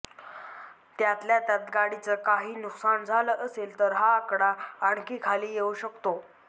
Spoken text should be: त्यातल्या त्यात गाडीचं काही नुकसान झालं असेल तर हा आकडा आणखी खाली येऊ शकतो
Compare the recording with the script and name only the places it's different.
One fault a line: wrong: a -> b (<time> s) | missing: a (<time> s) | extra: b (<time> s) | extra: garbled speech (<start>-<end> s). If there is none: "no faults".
no faults